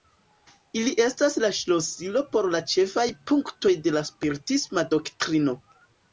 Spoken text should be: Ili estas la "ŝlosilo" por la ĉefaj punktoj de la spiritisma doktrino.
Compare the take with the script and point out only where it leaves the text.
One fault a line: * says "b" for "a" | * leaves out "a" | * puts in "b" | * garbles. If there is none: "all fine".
all fine